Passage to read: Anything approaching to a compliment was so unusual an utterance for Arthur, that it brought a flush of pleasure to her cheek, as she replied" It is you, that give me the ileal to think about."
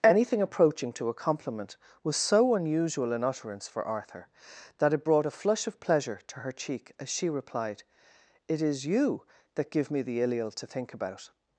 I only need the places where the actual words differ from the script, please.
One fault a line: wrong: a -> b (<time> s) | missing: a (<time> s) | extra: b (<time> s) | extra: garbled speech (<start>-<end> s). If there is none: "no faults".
no faults